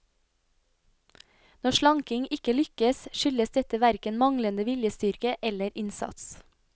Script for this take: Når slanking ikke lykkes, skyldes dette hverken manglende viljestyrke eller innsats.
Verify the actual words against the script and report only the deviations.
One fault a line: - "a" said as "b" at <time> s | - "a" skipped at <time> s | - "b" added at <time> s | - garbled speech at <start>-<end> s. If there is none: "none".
none